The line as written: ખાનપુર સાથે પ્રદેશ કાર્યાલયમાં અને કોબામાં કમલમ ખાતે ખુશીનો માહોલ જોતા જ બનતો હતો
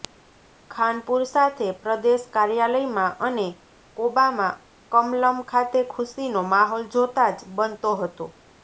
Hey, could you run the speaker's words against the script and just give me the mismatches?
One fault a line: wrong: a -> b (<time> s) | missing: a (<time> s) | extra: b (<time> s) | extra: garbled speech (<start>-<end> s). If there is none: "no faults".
no faults